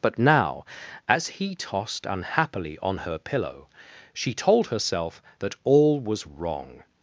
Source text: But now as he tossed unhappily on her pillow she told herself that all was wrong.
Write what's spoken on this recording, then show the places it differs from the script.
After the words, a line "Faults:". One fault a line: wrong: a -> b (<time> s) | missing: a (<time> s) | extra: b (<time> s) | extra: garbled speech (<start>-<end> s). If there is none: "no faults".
But now as he tossed unhappily on her pillow she told herself that all was wrong.
Faults:
no faults